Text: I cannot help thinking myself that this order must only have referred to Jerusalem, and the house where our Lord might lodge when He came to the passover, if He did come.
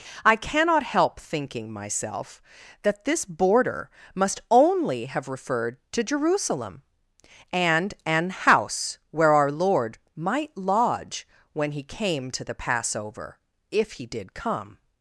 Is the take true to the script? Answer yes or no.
no